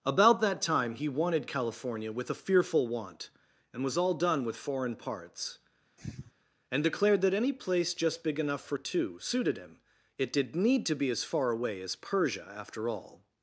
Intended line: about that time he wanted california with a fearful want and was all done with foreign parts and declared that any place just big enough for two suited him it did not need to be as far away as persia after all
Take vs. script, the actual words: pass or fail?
fail